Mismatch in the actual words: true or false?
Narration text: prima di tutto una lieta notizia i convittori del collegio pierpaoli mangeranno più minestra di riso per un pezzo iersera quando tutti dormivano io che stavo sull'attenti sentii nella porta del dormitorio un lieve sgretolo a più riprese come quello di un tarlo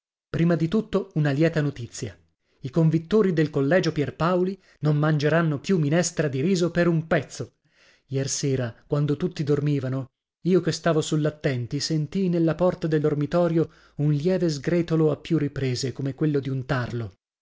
true